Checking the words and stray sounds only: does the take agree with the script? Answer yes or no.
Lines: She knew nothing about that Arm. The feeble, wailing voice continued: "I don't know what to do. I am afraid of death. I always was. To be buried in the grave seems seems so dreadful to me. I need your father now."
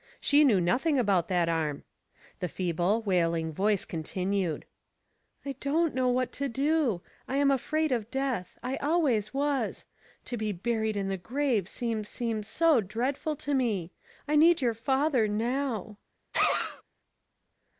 no